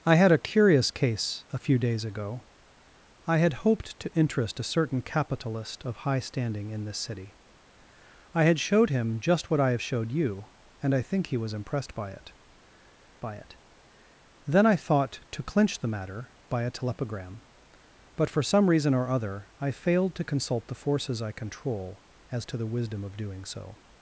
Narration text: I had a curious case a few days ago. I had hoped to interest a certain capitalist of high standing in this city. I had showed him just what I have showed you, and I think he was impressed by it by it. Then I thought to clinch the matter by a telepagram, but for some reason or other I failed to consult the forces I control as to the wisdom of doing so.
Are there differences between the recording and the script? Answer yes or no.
no